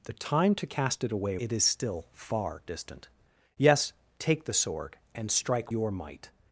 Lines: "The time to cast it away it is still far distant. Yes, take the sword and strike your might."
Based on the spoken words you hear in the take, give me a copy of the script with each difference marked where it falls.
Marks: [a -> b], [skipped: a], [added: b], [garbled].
"The time to cast it away it is still far distant. Yes, take the sword and strike your might."